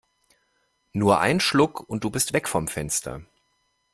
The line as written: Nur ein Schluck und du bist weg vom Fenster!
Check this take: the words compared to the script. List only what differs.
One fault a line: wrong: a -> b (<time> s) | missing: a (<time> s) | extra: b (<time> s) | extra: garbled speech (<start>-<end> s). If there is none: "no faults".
no faults